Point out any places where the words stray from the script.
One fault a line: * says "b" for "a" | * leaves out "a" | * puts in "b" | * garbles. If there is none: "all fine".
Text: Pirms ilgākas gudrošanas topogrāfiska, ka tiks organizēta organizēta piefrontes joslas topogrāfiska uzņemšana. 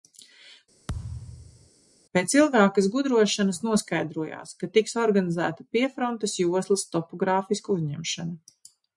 * says "Pēc" for "Pirms"
* says "noskaidrojās" for "topogrāfiska"
* leaves out "organizēta"